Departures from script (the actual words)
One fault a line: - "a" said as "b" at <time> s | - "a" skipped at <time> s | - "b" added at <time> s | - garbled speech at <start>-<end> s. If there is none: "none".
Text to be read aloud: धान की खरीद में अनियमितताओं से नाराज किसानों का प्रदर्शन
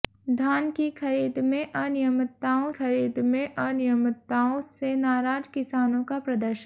- "खरीद में अनियमितताओं" added at 2.7 s